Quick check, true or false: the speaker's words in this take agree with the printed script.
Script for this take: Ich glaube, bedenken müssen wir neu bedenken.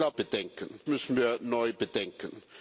true